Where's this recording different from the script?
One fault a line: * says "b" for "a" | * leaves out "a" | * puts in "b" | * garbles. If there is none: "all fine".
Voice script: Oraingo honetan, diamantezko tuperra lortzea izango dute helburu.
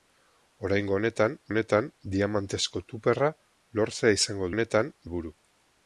* puts in "honetan"
* says "honetan" for "dute"